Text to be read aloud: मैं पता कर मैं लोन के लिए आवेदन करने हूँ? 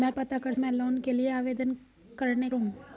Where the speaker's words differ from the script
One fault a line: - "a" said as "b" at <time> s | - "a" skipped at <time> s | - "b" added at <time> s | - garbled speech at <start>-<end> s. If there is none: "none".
none